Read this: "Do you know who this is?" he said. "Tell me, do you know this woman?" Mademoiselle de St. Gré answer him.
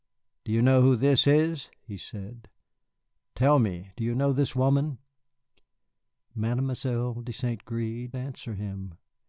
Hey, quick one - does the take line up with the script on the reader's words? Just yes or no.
yes